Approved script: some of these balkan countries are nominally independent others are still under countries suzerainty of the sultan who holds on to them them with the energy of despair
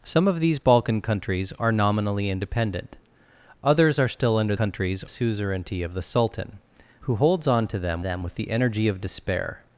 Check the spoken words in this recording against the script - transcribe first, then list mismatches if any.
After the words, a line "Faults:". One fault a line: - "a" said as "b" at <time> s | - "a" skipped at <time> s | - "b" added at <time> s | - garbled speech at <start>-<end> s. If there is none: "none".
some of these balkan countries are nominally independent others are still under countries suzerainty of the sultan who holds on to them them with the energy of despair
Faults:
none